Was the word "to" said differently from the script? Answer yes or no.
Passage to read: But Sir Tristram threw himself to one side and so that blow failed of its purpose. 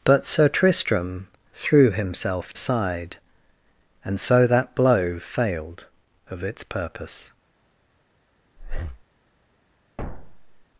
yes